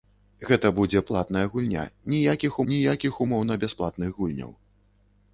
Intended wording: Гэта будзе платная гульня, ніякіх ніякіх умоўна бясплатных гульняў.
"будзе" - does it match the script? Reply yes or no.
yes